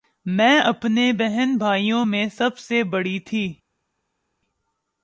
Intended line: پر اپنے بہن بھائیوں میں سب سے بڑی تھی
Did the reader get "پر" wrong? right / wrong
wrong